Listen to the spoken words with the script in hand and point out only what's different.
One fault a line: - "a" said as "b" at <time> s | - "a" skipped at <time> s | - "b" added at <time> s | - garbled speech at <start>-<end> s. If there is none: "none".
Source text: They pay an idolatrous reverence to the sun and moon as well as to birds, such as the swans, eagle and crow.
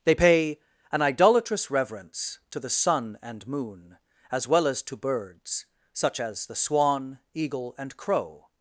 - "swans" said as "swan" at 6.5 s